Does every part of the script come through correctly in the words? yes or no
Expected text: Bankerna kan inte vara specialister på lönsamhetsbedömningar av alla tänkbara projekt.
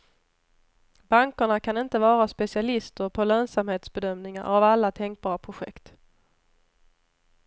yes